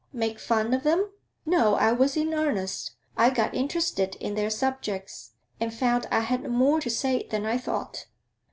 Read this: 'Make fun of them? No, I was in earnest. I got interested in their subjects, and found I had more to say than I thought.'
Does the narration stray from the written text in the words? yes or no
no